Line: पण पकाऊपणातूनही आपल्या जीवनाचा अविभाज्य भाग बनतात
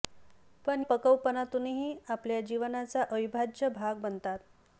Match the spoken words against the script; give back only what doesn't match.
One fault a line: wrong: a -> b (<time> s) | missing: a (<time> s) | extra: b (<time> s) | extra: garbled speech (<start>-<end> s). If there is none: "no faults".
no faults